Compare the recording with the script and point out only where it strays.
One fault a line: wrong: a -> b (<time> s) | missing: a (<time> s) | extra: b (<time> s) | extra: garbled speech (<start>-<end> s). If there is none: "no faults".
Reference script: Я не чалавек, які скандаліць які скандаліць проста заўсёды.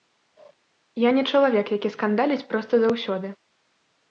missing: які скандаліць (2.5 s)